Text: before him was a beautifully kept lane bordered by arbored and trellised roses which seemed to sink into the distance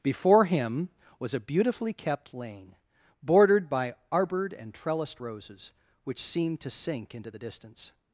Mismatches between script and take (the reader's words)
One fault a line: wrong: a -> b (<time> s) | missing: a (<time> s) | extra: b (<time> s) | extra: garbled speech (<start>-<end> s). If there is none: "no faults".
no faults